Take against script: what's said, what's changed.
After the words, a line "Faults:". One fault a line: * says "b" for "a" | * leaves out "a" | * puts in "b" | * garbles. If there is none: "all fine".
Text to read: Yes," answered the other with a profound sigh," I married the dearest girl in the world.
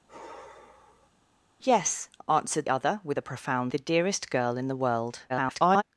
Yes," answered other with a profound the dearest girl in the world. [garbled]
Faults:
* leaves out "the"
* leaves out "sigh I married"
* garbles